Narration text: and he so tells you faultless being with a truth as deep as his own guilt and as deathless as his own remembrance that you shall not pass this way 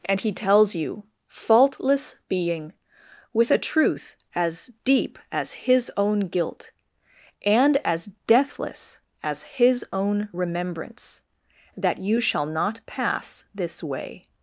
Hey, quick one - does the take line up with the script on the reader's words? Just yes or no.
no